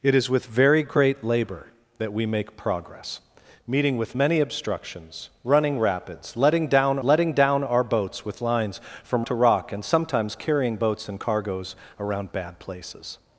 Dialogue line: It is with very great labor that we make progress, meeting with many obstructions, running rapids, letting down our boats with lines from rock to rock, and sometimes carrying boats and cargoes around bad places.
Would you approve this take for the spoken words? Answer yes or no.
no